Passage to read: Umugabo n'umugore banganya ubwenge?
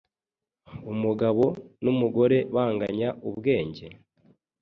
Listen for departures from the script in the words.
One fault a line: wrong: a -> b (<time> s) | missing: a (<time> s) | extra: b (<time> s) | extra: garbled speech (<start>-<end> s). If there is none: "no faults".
no faults